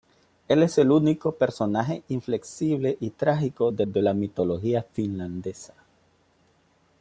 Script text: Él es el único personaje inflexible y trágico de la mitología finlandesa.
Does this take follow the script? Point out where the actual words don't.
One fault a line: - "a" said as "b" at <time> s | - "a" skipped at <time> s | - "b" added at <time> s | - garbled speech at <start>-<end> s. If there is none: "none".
- "de" added at 3.8 s